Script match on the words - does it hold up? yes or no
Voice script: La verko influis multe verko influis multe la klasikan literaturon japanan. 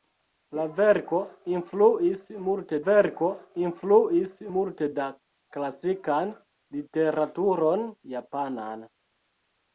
yes